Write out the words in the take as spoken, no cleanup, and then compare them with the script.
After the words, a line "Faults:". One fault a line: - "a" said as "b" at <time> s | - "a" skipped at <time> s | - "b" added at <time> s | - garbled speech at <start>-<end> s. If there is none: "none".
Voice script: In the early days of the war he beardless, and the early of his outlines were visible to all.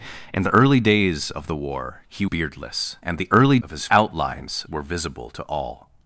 In the early days of the war he beardless, and the early of his outlines were visible to all.
Faults:
none